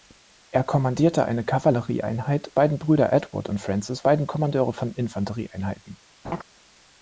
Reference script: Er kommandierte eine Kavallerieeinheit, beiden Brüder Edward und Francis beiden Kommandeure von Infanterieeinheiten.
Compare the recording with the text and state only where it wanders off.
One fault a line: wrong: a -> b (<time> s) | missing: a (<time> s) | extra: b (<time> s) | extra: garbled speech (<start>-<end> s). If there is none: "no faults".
no faults